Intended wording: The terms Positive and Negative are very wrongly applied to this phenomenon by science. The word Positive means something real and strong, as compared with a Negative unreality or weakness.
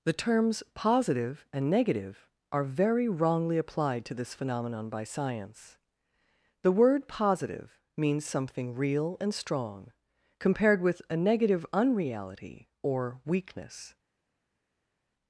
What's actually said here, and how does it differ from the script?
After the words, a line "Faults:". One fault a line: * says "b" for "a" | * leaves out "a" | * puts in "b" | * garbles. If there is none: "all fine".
The terms Positive and Negative are very wrongly applied to this phenomenon by science. The word Positive means something real and strong, compared with a Negative unreality or weakness.
Faults:
* leaves out "as"